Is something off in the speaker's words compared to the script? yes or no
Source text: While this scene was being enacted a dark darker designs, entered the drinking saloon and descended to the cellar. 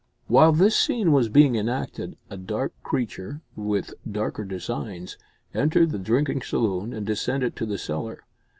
yes